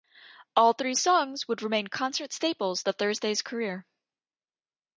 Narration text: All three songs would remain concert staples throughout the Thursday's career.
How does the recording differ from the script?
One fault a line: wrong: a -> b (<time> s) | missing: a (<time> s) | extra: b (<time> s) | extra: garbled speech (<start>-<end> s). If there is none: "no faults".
missing: throughout (2.8 s)